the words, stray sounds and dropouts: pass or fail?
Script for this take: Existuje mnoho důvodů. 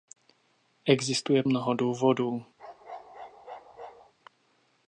fail